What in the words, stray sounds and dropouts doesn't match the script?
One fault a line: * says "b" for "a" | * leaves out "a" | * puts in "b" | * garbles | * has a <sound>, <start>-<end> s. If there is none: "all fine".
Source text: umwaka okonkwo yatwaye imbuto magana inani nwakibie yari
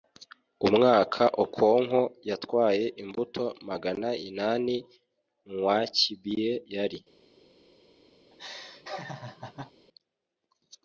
* has a laugh, 8.3-9.7 s